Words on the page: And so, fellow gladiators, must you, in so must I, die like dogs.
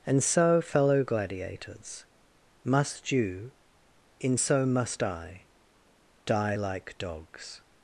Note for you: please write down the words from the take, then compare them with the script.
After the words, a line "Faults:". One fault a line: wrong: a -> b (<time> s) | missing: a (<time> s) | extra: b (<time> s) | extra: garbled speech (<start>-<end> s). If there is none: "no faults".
And so, fellow gladiators, must you, in so must I, die like dogs.
Faults:
no faults